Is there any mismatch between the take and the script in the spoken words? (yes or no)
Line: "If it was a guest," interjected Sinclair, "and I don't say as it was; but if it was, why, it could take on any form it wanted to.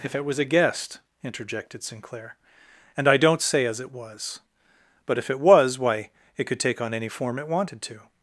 no